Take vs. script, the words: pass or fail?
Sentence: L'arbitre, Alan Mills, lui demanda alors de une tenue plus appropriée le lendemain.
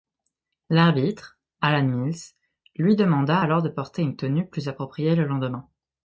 fail